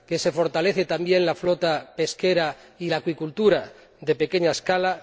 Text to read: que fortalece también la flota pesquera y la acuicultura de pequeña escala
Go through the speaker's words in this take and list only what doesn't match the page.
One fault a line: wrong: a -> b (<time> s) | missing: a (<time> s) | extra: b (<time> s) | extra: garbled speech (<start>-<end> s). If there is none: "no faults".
extra: se (0.2 s)